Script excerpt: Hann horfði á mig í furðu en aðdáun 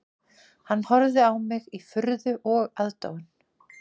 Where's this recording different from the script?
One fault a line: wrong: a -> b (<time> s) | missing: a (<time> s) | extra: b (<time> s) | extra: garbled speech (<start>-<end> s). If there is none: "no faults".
wrong: en -> og (2.6 s)